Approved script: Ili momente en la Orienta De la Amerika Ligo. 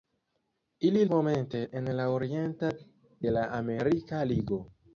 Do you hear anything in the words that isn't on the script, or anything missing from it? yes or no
no